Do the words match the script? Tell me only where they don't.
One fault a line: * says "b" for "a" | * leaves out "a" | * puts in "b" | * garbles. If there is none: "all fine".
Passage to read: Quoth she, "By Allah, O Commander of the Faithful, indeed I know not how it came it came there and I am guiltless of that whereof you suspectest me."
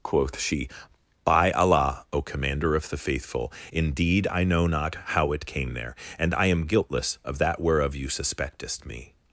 * leaves out "it came"